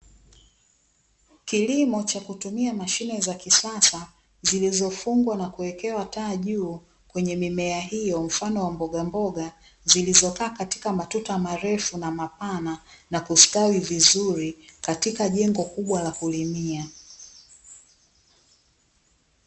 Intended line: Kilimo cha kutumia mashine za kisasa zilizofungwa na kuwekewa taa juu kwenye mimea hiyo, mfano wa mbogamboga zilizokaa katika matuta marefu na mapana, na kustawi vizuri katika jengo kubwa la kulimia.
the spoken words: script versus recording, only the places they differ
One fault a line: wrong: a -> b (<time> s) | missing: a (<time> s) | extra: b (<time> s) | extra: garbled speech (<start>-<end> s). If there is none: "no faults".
no faults